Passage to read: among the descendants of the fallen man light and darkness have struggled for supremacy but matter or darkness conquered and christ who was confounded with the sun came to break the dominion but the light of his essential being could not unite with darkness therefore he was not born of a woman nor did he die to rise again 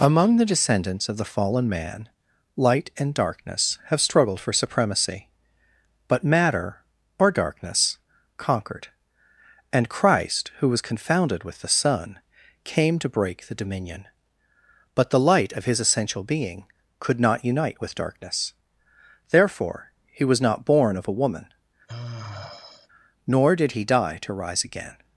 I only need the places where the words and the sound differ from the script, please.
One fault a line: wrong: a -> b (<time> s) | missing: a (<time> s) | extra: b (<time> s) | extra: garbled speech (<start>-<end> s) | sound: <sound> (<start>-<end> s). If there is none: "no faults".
sound: sigh (21.9-22.9 s)